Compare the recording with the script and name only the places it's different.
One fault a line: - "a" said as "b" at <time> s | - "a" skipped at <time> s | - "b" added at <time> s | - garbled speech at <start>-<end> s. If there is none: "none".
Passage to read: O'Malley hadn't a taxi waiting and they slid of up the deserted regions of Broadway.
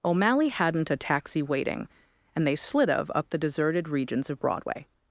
none